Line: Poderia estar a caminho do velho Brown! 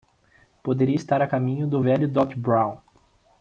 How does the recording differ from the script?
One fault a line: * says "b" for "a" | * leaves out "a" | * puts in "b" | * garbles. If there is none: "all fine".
* puts in "Doc"